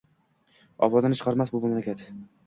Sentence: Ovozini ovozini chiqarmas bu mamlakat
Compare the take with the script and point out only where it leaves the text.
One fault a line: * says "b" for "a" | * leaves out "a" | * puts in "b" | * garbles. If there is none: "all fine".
* leaves out "ovozini"